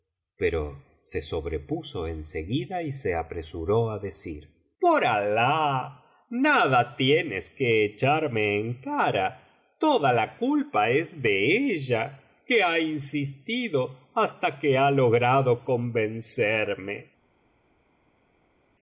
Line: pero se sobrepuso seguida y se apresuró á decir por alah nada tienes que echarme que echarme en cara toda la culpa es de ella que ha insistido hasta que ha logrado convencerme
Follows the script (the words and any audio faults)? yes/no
no